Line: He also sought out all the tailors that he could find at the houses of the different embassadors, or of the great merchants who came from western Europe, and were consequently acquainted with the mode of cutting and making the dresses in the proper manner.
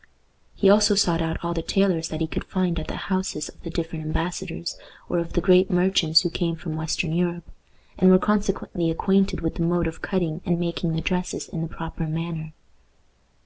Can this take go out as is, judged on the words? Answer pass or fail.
pass